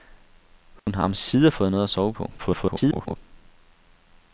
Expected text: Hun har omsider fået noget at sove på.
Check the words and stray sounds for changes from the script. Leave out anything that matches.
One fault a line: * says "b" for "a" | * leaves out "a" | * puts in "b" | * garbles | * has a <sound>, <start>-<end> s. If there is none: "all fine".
* has a dropout, 0.8-0.9 s
* garbles